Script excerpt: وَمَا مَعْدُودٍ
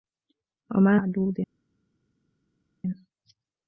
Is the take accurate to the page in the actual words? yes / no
yes